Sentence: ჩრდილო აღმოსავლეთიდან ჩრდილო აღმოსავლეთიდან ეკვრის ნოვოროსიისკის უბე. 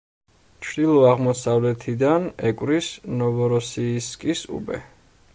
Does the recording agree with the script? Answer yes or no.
no